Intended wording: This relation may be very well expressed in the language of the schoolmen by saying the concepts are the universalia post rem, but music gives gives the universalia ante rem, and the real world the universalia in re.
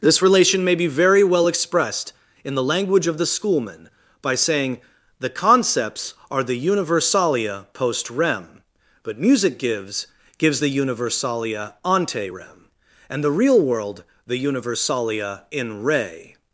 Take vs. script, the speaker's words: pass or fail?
pass